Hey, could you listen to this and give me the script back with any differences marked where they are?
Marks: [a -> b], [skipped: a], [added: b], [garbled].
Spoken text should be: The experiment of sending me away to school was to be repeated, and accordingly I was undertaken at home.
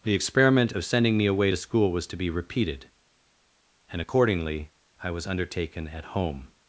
The experiment of sending me away to school was to be repeated, and accordingly I was undertaken at home.